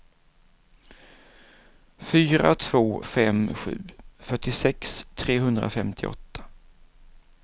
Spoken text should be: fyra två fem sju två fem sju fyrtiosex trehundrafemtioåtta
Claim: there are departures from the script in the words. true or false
true